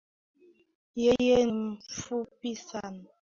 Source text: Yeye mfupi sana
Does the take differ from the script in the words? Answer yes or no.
no